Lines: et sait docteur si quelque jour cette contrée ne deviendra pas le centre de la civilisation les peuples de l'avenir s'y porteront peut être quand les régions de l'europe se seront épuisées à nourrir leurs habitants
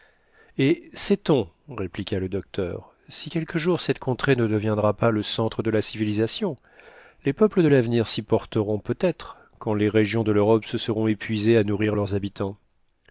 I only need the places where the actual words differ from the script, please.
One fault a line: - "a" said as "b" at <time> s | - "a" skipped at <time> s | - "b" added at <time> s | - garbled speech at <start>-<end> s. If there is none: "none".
- "on répliqua le" added at 1.3 s